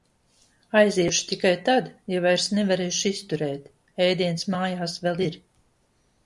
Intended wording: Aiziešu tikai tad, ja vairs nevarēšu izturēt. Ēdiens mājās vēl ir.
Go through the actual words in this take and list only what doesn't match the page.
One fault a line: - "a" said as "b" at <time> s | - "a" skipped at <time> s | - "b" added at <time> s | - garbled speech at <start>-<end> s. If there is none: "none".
none